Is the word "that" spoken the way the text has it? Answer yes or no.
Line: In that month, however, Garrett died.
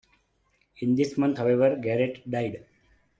no